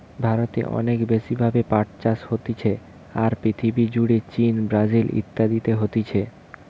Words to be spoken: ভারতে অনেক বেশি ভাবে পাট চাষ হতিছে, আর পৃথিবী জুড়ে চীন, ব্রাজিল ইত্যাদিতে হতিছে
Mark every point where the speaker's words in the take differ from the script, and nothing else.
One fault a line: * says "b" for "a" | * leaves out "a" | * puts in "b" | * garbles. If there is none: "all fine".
all fine